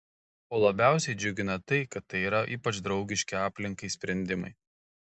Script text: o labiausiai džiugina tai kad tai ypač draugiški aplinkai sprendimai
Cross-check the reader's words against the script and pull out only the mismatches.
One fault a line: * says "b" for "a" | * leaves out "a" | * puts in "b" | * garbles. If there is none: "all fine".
* puts in "yra"